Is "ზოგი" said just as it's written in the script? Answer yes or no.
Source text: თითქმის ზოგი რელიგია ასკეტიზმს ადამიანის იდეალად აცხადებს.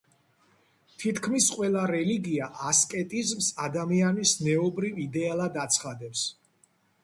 no